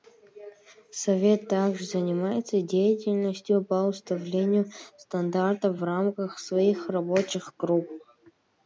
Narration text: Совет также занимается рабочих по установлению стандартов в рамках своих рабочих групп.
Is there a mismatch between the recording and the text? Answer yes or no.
yes